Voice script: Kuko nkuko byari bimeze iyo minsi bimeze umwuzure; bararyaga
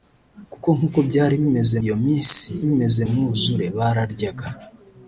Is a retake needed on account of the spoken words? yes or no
no